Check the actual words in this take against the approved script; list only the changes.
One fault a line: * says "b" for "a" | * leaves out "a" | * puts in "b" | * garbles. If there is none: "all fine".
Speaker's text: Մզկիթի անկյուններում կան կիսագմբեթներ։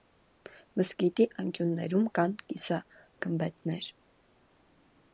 all fine